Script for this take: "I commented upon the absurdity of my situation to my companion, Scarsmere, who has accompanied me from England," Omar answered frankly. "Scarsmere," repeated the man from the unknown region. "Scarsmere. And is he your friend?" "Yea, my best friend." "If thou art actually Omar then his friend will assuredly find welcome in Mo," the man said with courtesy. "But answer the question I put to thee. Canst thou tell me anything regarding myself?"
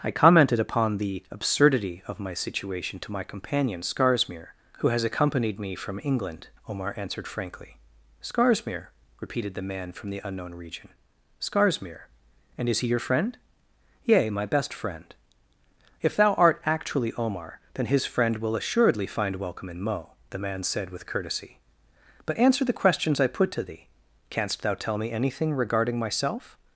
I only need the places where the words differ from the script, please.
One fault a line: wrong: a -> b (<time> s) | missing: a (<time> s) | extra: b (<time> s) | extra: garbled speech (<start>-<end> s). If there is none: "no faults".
wrong: question -> questions (22.8 s)